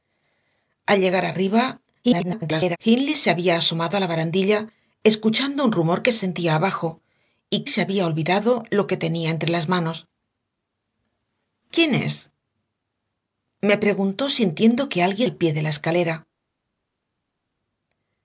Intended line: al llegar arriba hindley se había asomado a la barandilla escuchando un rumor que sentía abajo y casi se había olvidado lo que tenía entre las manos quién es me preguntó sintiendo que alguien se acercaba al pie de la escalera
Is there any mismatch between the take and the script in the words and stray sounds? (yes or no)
yes